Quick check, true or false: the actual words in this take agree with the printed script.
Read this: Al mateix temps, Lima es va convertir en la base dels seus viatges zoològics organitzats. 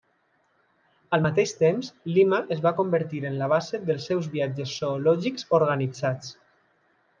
true